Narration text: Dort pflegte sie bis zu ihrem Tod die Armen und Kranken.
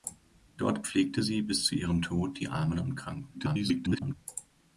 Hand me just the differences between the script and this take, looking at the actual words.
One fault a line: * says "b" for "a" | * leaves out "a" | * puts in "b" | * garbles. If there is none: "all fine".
* garbles